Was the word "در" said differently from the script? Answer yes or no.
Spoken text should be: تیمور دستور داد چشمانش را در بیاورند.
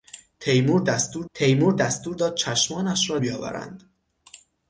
yes